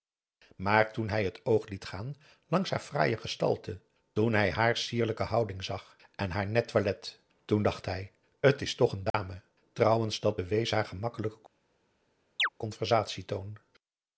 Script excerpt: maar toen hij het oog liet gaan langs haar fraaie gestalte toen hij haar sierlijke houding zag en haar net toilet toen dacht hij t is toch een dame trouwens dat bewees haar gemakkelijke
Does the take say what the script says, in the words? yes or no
yes